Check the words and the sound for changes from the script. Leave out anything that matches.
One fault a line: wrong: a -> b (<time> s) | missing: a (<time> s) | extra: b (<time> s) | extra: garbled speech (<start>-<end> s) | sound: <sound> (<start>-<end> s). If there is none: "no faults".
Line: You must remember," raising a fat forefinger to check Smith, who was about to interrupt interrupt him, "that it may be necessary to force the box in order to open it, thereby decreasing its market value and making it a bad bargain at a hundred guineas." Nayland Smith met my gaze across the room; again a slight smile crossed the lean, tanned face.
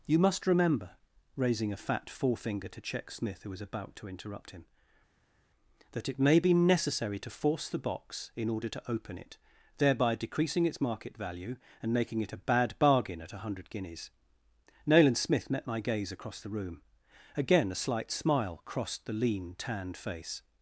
missing: interrupt (4.5 s)